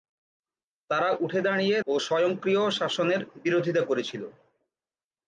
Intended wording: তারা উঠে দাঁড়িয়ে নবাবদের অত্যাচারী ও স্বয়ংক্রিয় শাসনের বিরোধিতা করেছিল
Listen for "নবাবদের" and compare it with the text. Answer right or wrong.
wrong